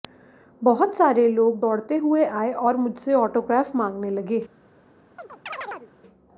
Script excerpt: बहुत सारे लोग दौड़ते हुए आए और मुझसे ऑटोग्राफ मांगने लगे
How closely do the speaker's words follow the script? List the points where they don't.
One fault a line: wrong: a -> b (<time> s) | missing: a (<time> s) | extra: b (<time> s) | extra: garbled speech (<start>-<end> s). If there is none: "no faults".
no faults